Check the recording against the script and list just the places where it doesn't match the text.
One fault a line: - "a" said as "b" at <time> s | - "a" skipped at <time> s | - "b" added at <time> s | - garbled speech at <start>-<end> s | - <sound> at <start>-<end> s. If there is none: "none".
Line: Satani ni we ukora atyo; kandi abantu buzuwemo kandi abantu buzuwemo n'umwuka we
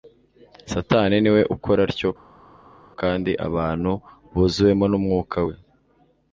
- "kandi abantu buzuwemo" skipped at 4.8 s